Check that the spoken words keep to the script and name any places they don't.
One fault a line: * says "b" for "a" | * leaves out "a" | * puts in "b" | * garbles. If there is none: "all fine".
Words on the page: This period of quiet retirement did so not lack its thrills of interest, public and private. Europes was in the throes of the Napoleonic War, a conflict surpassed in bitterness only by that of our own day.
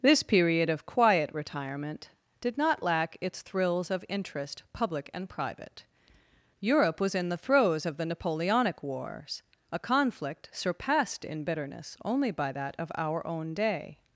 * leaves out "so"
* says "Europe" for "Europes"
* says "Wars" for "War"